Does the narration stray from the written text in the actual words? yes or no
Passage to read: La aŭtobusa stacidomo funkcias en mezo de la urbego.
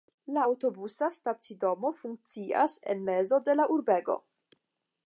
no